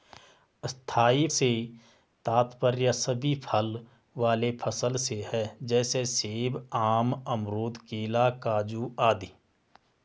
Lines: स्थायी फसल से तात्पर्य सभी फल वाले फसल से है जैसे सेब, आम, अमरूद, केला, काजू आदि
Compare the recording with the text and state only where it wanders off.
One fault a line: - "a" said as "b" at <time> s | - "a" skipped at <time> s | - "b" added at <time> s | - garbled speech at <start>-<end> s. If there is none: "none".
- "फसल" skipped at 1.3 s